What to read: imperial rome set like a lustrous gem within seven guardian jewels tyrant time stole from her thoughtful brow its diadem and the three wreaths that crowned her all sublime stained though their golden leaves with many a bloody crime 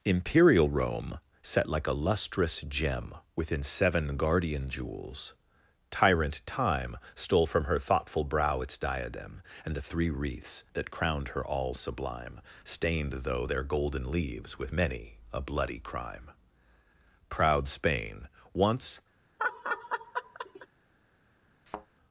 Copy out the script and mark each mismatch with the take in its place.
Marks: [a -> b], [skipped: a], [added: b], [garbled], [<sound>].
imperial rome set like a lustrous gem within seven guardian jewels tyrant time stole from her thoughtful brow its diadem and the three wreaths that crowned her all sublime stained though their golden leaves with many a bloody crime [added: proud spain once] [laugh] [thud]